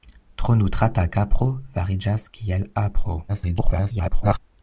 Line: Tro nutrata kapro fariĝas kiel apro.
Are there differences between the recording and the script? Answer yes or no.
yes